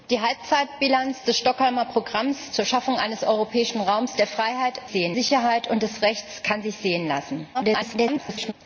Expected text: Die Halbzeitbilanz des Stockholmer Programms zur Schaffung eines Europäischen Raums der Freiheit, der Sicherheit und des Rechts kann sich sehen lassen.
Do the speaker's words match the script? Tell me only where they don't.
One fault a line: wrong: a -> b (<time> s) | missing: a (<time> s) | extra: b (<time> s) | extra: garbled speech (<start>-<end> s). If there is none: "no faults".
wrong: der -> sehen (4.9 s)
extra: garbled speech (7.5-8.5 s)